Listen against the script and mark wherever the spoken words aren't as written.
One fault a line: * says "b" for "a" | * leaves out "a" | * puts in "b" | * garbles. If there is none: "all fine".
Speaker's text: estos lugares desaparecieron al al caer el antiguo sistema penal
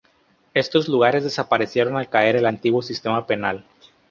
* leaves out "al"